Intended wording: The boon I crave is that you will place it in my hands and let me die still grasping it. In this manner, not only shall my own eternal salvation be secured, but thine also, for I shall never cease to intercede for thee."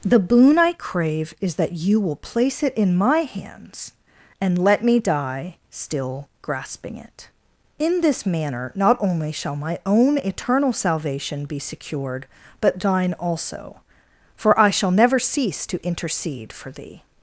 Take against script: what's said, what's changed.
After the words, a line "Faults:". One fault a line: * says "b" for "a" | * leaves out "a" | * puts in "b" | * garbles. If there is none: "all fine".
The boon I crave is that you will place it in my hands and let me die still grasping it. In this manner, not only shall my own eternal salvation be secured, but thine also, for I shall never cease to intercede for thee."
Faults:
all fine